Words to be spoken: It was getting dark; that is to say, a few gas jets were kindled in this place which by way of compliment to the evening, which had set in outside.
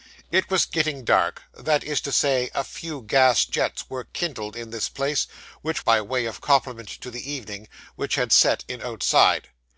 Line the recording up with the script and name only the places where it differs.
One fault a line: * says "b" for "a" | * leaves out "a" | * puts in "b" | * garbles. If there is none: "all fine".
all fine